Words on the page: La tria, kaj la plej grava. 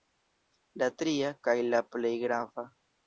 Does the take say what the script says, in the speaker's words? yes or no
yes